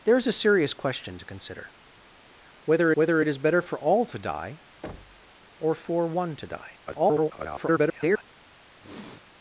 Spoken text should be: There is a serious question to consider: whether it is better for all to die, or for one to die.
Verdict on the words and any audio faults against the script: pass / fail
fail